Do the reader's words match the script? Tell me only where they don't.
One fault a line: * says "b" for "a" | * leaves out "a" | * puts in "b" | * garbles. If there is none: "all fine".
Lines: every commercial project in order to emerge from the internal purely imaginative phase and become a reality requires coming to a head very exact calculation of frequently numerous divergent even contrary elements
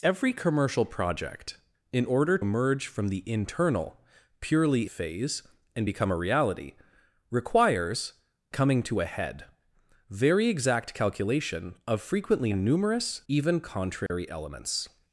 * leaves out "to"
* leaves out "imaginative"
* leaves out "divergent"